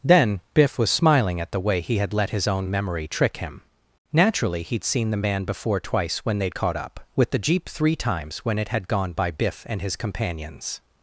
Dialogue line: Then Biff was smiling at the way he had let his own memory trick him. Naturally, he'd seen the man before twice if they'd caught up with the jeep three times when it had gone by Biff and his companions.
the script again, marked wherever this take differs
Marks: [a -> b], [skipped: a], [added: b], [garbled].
Then Biff was smiling at the way he had let his own memory trick him. Naturally, he'd seen the man before twice [if -> when] they'd caught up with the jeep three times when it had gone by Biff and his companions.